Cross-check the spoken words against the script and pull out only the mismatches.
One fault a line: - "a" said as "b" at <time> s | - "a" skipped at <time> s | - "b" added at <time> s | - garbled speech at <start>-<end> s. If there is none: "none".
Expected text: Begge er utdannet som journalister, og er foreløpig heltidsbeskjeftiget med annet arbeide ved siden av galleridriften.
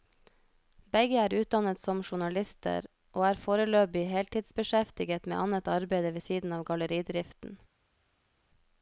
none